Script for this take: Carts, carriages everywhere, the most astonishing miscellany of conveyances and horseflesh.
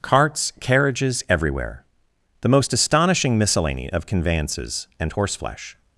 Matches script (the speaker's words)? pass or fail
pass